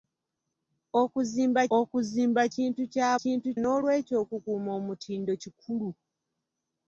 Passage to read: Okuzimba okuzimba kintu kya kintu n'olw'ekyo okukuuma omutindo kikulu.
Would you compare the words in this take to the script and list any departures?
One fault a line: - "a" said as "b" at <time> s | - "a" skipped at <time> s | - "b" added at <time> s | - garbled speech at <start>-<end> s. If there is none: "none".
none